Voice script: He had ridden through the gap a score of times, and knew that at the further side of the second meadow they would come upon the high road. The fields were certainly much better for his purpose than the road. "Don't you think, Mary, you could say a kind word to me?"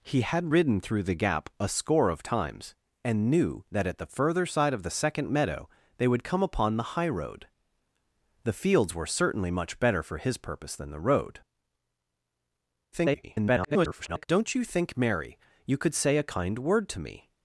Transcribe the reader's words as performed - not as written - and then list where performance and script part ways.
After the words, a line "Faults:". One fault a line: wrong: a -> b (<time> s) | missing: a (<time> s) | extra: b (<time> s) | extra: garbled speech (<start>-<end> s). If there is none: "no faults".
He had ridden through the gap a score of times, and knew that at the further side of the second meadow they would come upon the high road. The fields were certainly much better for his purpose than the road. [garbled] "Don't you think, Mary, you could say a kind word to me?"
Faults:
extra: garbled speech (12.9-14.2 s)